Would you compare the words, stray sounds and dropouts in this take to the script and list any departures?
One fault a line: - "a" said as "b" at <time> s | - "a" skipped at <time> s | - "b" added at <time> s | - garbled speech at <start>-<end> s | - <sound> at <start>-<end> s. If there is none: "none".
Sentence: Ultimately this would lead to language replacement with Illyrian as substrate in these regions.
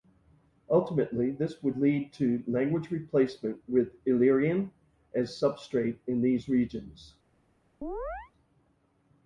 - chirp at 7.8-8.3 s